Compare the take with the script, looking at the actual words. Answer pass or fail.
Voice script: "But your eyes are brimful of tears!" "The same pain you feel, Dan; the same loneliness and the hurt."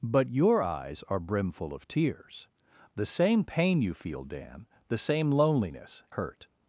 fail